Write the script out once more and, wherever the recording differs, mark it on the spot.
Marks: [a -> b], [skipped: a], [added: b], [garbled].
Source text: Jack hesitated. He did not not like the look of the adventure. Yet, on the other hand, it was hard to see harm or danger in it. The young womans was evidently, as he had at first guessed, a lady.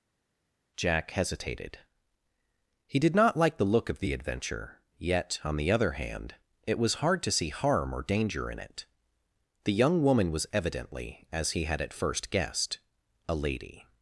Jack hesitated. He did not [skipped: not] like the look of the adventure. Yet, on the other hand, it was hard to see harm or danger in it. The young [womans -> woman] was evidently, as he had at first guessed, a lady.